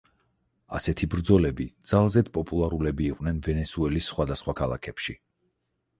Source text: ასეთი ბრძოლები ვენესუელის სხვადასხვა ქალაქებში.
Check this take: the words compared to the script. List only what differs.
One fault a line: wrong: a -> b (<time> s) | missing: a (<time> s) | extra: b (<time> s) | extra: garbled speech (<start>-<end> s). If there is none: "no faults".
extra: ძალზედ პოპულარულები იყვნენ (1.9 s)